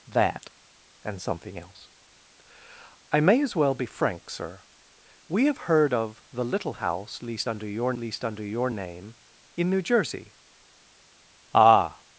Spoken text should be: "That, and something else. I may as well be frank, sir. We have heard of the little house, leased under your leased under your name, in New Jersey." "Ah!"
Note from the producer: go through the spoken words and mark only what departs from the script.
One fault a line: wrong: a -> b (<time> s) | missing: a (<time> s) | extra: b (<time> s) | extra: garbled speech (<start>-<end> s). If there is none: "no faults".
no faults